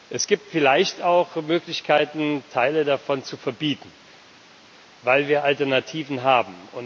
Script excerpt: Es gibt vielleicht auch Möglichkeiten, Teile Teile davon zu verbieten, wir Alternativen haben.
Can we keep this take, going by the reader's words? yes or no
no